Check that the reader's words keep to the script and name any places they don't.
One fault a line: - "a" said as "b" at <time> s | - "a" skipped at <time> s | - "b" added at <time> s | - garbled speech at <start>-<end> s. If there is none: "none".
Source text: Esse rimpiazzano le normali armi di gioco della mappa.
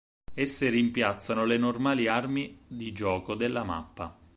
none